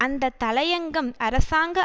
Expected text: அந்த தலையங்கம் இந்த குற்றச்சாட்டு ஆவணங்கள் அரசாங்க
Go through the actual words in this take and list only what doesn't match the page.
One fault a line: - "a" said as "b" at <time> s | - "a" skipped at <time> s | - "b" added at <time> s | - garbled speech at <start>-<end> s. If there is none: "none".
- "இந்த குற்றச்சாட்டு ஆவணங்கள்" skipped at 1.1 s